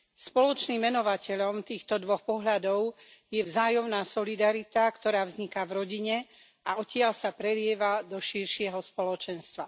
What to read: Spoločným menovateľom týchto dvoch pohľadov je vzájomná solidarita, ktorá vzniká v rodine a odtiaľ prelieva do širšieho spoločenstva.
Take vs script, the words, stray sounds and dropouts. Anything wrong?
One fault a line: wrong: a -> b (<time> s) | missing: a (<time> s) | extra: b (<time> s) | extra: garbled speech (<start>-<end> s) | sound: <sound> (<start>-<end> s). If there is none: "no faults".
extra: sa (7.1 s)